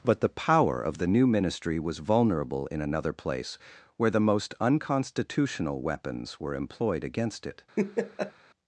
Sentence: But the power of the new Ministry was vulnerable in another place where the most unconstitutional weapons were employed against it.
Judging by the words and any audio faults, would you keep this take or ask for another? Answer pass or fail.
fail